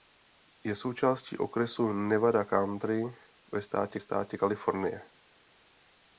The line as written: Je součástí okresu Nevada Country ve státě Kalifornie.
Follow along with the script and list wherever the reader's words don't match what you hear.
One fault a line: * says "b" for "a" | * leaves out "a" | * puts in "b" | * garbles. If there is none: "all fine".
* puts in "státě"